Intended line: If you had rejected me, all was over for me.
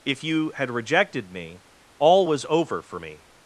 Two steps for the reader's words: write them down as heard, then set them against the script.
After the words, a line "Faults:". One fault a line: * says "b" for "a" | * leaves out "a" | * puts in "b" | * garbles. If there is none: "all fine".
If you had rejected me, all was over for me.
Faults:
all fine